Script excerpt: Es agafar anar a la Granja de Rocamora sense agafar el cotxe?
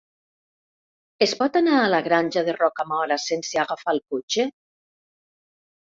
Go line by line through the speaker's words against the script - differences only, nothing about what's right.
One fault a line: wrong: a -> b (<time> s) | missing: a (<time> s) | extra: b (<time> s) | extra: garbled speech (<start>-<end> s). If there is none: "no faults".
wrong: agafar -> pot (1.4 s)